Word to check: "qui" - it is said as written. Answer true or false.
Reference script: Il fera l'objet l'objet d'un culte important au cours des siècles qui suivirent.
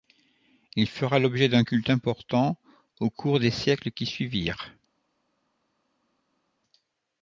true